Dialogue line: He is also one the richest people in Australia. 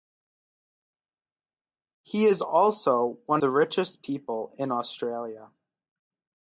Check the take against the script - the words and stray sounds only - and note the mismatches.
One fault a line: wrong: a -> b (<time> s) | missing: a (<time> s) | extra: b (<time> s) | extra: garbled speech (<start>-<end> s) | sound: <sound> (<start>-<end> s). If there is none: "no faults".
no faults